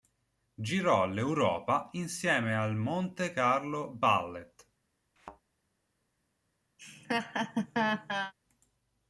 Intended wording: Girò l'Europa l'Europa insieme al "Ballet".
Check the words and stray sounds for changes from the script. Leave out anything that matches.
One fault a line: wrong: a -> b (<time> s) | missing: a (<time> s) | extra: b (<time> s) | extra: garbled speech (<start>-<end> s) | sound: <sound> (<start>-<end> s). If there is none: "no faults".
missing: l'Europa (1.9 s)
extra: Monte Carlo (2.8 s)
sound: thud (5.2-5.4 s)
sound: laugh (6.8-8.3 s)